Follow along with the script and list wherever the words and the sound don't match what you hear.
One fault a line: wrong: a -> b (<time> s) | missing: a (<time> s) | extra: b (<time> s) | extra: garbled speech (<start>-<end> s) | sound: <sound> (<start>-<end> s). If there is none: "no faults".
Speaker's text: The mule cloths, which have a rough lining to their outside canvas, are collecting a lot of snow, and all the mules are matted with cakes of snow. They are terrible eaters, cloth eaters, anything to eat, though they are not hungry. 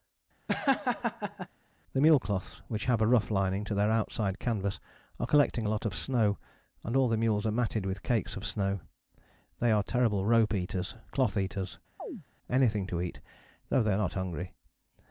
sound: laugh (0.5-1.5 s)
extra: rope (10.2 s)
sound: chirp (12.0-12.2 s)